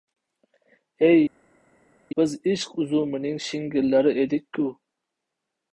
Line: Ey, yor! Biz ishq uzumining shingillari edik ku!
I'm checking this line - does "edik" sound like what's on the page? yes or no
yes